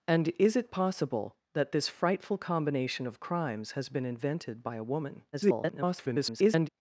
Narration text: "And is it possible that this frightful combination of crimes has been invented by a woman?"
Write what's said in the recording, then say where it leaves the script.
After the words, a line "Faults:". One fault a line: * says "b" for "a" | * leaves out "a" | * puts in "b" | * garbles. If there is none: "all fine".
"And is it possible that this frightful combination of crimes has been invented by a woman?" [garbled]
Faults:
* garbles